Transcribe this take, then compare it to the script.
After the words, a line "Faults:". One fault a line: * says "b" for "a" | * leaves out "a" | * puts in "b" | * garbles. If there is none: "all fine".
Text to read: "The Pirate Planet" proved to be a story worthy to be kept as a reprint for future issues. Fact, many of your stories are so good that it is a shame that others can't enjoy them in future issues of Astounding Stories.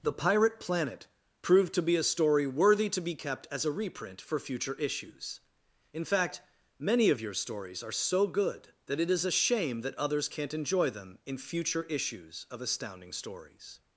"The Pirate Planet" proved to be a story worthy to be kept as a reprint for future issues. In fact, many of your stories are so good that it is a shame that others can't enjoy them in future issues of Astounding Stories.
Faults:
* puts in "In"